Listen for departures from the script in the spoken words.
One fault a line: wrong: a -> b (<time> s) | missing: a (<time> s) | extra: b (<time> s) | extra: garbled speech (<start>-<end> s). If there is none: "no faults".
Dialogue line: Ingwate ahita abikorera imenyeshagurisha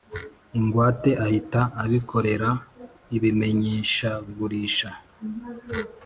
no faults